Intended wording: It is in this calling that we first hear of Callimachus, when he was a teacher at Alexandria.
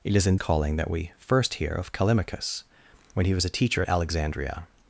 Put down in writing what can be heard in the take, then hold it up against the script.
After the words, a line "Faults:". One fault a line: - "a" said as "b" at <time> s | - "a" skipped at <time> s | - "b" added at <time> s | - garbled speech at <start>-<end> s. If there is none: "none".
It is in calling that we first hear of Callimachus, when he was a teacher at Alexandria.
Faults:
- "this" skipped at 0.4 s